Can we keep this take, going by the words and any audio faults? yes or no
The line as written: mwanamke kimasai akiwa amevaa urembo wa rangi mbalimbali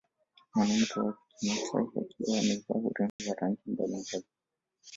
no